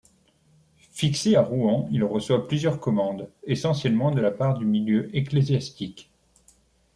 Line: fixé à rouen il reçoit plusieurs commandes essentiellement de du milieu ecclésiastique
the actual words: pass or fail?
fail